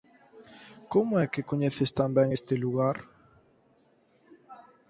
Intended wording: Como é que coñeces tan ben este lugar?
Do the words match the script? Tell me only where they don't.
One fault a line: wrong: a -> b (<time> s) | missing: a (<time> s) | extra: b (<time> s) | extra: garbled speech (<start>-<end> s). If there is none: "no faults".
no faults